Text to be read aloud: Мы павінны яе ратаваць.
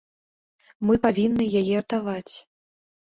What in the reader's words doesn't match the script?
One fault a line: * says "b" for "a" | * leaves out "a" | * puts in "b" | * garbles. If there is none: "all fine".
all fine